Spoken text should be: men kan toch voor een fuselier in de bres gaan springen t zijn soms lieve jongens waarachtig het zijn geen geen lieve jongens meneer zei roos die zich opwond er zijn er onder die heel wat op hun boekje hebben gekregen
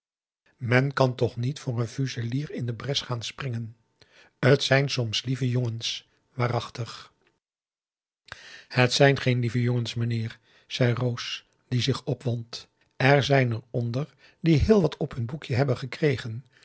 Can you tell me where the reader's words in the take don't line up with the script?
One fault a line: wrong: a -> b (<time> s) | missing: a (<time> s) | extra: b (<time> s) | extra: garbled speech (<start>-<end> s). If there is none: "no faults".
extra: niet (1.4 s)
missing: geen (9.4 s)